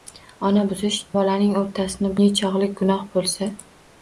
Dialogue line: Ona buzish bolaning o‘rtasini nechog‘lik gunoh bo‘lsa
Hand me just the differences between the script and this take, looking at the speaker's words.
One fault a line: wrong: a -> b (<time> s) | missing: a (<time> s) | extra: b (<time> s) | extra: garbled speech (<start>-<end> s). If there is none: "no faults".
no faults